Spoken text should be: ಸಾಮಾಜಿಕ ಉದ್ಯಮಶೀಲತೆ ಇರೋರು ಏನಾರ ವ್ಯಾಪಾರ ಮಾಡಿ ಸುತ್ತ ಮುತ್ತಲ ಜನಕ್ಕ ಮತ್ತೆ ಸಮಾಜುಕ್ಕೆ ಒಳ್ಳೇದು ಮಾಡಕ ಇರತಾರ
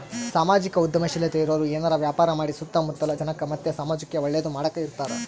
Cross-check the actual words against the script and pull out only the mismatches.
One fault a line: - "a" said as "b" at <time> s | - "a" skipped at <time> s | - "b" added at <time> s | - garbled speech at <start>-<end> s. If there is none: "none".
none